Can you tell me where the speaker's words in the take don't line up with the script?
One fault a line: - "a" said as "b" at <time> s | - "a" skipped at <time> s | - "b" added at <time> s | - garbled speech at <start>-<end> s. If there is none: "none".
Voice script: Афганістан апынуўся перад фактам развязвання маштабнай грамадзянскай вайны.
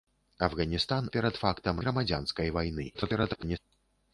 - "апынуўся" skipped at 1.1 s
- "развязвання маштабнай" skipped at 1.8 s
- garbled speech at 2.9-3.6 s